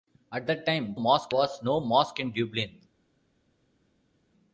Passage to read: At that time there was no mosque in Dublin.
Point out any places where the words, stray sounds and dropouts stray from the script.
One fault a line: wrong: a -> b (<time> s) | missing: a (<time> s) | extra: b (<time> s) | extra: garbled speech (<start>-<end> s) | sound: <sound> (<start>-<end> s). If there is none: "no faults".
wrong: there -> mosque (0.9 s)